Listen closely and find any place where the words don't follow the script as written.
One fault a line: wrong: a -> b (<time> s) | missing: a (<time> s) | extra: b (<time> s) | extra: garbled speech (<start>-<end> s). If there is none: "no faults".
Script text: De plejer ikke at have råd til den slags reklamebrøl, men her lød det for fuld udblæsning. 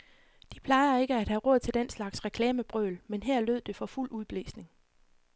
no faults